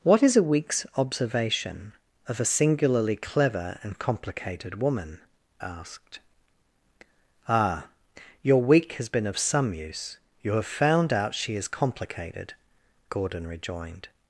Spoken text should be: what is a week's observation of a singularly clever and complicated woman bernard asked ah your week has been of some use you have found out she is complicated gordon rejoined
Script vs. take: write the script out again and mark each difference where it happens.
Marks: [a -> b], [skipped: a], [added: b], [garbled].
what is a week's observation of a singularly clever and complicated woman [skipped: bernard] asked ah your week has been of some use you have found out she is complicated gordon rejoined